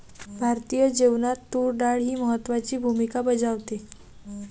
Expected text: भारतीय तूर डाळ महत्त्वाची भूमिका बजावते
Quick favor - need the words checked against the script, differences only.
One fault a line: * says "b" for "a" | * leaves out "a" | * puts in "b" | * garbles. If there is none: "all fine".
* puts in "जेवणात"
* puts in "ही"